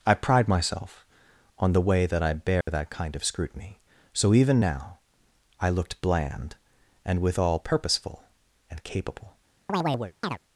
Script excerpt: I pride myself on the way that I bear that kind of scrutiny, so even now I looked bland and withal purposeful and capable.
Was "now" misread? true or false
false